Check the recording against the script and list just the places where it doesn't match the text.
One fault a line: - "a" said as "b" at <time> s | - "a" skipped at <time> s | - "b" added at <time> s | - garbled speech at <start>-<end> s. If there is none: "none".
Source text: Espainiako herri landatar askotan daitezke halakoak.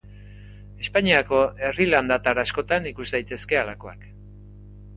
- "ikus" added at 2.9 s